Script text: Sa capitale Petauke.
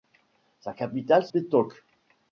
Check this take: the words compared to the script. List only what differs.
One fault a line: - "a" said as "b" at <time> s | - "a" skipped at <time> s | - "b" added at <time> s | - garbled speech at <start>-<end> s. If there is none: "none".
none